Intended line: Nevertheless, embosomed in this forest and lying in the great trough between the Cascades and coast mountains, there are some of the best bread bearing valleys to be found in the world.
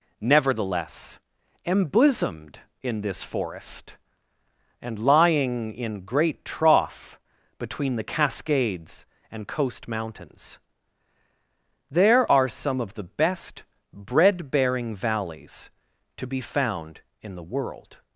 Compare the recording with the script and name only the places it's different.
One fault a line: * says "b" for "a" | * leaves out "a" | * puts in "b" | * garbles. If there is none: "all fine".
* leaves out "the"